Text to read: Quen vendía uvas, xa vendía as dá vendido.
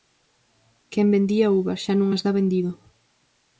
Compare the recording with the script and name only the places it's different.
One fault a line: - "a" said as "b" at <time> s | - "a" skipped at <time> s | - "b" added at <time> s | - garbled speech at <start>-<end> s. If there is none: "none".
- "vendía" said as "non" at 2.0 s